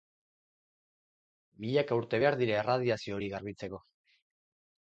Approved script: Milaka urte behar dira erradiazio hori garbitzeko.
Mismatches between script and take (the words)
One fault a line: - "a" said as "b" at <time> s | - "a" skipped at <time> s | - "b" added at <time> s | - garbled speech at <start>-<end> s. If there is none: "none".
none